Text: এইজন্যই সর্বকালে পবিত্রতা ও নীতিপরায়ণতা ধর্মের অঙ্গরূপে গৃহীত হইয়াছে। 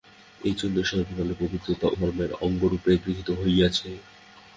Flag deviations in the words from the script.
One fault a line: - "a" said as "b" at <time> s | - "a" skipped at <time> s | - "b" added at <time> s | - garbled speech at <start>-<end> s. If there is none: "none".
- "ও নীতিপরায়ণতা" skipped at 1.9 s